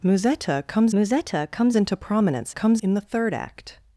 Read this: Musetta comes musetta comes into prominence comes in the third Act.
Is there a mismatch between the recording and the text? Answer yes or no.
no